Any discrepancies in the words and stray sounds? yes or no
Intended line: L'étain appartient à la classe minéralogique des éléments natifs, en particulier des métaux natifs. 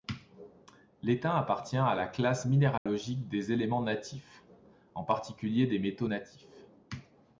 yes